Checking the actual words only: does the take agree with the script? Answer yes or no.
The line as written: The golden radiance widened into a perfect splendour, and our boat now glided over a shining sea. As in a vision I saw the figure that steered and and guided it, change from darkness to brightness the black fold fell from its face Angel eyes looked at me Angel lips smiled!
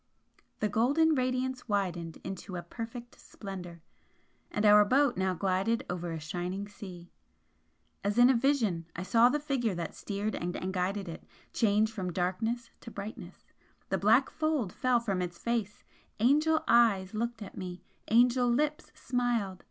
yes